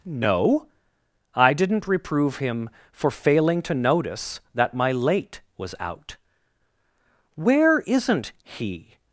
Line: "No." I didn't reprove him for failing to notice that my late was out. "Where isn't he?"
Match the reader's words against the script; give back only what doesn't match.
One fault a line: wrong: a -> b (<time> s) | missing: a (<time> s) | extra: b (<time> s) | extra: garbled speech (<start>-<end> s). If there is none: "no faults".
no faults